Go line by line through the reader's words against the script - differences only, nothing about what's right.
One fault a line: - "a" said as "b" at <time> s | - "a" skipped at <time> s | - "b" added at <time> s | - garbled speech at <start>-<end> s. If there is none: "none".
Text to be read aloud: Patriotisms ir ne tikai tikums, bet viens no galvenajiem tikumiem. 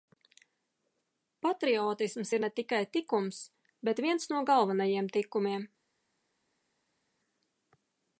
none